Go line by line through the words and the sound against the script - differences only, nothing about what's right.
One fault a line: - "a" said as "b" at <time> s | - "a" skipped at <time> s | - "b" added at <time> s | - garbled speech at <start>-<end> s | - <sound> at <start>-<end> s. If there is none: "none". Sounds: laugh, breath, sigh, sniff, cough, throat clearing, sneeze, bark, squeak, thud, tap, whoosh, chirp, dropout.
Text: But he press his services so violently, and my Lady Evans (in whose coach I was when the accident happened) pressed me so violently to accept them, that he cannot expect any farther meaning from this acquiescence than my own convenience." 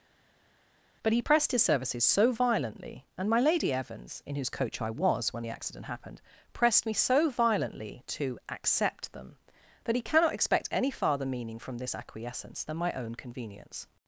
- "press" said as "pressed" at 1.2 s